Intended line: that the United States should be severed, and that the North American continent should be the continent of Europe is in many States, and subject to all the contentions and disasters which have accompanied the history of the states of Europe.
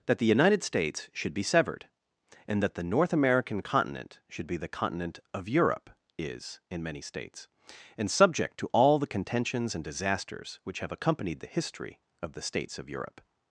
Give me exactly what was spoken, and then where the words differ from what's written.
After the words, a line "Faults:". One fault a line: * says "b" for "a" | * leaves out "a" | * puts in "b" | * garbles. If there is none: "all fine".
that the United States should be severed, and that the North American continent should be the continent of Europe is in many States, and subject to all the contentions and disasters which have accompanied the history of the states of Europe.
Faults:
all fine